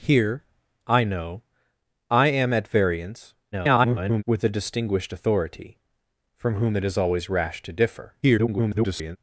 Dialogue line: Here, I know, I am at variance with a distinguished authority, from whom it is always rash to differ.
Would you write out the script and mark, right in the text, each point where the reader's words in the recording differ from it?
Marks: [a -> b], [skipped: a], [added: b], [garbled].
Here, I know, I am at variance [garbled] with a distinguished authority, from whom it is always rash to differ. [garbled]